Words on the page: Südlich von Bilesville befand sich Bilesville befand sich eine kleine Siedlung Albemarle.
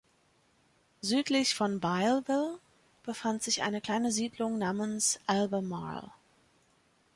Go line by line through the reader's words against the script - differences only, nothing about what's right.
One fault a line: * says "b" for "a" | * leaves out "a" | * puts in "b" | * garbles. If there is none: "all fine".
* leaves out "Bilesville befand sich"
* puts in "namens"